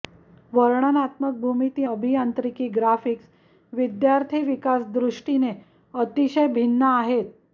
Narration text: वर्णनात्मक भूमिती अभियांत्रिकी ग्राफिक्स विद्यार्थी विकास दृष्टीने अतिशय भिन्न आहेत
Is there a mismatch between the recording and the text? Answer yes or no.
no